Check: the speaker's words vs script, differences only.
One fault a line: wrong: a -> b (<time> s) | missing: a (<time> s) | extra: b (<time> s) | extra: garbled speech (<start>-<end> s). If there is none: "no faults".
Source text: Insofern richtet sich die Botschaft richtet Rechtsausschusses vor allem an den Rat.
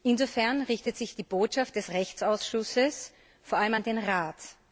wrong: richtet -> des (1.8 s)